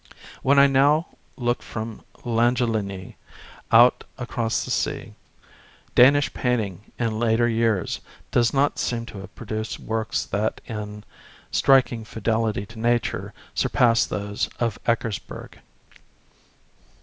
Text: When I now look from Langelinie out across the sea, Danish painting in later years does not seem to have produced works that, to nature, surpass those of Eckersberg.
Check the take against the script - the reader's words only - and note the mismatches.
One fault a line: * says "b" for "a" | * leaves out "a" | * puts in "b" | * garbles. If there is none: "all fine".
* puts in "in striking fidelity"